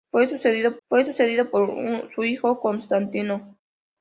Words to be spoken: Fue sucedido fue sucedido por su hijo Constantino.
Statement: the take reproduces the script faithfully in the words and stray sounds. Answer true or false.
true